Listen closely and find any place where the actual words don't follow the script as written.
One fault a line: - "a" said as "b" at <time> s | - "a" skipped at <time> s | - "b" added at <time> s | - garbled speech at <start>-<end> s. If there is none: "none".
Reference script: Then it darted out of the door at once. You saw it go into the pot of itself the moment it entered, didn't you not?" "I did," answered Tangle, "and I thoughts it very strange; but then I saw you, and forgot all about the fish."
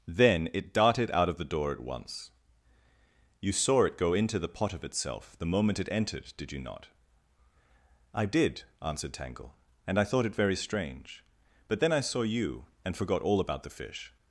- "didn't" said as "did" at 6.4 s
- "thoughts" said as "thought" at 10.1 s